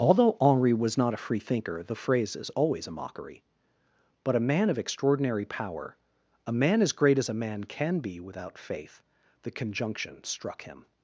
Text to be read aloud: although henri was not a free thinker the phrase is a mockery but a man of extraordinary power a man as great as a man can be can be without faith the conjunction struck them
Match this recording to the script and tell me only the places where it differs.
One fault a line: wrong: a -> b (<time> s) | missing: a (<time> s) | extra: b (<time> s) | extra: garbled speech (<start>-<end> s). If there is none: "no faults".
extra: always (2.5 s)
missing: can be (8.2 s)
wrong: them -> him (10.6 s)